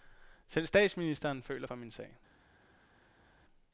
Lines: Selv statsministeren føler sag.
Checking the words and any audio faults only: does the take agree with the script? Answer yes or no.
no